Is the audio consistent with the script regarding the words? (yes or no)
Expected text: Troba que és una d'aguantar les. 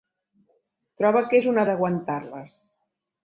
yes